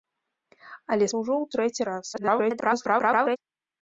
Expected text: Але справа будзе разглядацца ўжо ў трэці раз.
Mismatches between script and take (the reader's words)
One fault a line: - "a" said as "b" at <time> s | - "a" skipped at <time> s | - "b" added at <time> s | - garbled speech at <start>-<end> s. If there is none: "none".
- "справа будзе разглядацца" skipped at 1.1 s
- garbled speech at 2.1-3.4 s